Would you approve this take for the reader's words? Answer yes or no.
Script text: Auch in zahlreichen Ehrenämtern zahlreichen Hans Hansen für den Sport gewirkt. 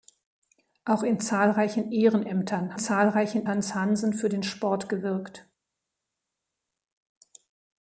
yes